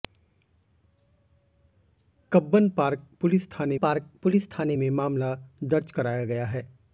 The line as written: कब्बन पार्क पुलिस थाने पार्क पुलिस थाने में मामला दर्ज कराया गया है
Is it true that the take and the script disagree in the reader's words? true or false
false